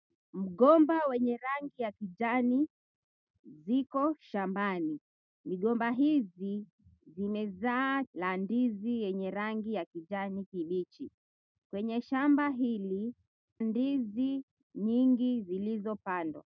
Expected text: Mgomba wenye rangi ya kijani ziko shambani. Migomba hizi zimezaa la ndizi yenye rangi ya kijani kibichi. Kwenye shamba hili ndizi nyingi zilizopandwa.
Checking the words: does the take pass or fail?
pass